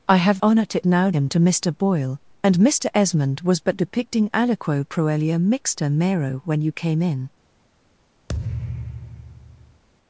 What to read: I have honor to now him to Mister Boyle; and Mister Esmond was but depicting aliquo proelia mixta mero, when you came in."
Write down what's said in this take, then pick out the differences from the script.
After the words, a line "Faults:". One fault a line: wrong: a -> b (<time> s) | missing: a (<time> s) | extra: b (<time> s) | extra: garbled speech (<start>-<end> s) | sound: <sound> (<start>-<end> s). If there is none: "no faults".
I have honor to now him to Mister Boyle; and Mister Esmond was but depicting aliquo proelia mixta mero, when you came in."
Faults:
sound: thud (8.3-9.8 s)